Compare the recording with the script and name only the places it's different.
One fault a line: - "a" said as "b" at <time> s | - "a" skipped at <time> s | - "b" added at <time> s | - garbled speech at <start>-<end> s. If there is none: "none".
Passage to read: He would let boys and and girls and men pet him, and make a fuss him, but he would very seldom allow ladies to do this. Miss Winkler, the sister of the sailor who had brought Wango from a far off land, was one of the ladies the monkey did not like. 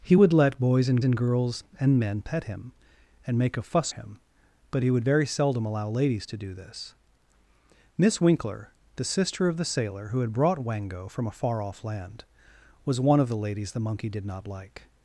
none